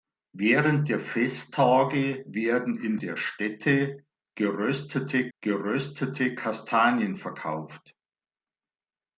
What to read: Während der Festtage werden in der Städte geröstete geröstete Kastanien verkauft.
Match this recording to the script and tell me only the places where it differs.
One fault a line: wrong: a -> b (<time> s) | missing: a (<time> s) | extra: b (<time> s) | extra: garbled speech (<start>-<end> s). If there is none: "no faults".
no faults